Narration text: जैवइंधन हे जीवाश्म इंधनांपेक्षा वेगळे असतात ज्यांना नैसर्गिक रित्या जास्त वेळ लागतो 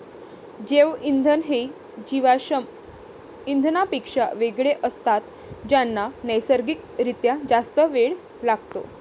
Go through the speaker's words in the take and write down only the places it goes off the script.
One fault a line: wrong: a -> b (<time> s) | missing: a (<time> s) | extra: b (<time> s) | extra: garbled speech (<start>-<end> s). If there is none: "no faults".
no faults